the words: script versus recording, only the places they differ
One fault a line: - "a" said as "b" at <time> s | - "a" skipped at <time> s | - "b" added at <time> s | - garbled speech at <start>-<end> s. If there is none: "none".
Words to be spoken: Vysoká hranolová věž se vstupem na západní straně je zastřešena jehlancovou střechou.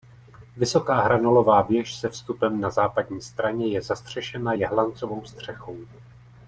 none